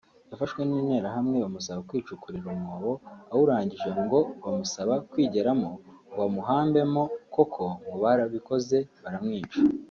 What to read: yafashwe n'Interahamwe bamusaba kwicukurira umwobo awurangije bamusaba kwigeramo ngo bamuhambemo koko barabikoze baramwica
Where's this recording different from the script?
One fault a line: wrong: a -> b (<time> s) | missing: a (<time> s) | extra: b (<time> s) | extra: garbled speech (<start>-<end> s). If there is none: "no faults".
extra: ngo (4.0 s)
extra: ngo (7.8 s)